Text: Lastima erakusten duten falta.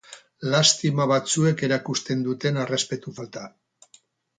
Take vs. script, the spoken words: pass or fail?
fail